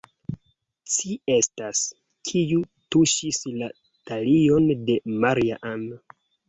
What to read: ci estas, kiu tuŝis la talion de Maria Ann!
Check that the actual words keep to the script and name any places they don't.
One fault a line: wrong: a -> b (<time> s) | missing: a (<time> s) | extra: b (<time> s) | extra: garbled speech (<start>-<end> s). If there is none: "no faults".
no faults